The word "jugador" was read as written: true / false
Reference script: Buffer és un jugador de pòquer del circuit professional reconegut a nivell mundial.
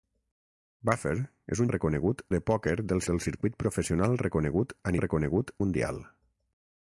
false